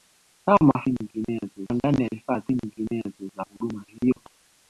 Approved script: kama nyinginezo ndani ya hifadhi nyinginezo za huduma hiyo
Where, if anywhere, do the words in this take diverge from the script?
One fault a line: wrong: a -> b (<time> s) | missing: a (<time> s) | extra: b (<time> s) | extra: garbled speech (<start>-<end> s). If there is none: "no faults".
no faults